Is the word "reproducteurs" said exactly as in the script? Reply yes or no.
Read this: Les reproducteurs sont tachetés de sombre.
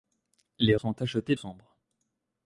no